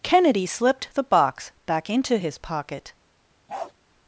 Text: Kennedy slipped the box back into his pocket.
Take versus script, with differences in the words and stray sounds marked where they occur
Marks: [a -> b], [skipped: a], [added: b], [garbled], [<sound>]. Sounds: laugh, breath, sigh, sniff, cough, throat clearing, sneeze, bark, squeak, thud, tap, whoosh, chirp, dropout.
Kennedy slipped the box back into his pocket. [bark]